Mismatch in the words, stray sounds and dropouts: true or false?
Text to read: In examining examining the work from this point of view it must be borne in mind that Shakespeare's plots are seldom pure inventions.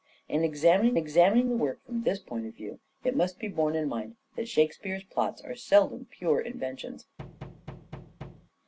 true